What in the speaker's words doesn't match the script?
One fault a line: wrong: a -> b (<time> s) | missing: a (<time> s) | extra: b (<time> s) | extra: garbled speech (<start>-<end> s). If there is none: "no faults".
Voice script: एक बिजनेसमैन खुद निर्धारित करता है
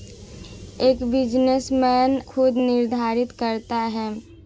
no faults